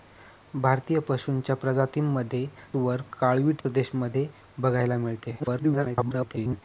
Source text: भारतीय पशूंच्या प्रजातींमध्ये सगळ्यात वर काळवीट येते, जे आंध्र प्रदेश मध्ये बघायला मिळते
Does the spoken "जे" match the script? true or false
false